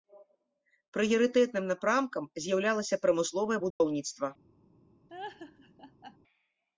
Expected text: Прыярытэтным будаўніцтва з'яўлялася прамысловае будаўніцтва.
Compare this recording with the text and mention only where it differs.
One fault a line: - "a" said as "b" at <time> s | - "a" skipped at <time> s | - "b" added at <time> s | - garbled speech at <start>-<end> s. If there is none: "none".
- "будаўніцтва" said as "напрамкам" at 1.7 s